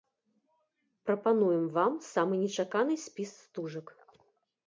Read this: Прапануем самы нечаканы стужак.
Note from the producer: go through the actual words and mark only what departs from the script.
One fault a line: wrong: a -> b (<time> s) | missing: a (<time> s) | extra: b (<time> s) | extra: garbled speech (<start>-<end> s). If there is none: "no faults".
extra: вам (1.8 s)
extra: спіс (3.0 s)